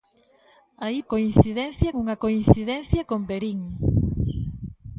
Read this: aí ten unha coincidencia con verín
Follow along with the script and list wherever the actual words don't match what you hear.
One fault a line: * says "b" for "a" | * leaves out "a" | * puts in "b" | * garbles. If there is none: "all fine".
* says "coincidencia" for "ten"